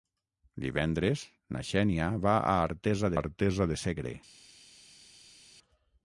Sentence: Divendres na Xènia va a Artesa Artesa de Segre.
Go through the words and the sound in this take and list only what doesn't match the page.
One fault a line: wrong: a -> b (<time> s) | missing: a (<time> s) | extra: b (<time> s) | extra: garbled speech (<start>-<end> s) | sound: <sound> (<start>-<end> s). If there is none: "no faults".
no faults